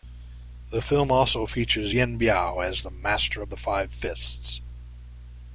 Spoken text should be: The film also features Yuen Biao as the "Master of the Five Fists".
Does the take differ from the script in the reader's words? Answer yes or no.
no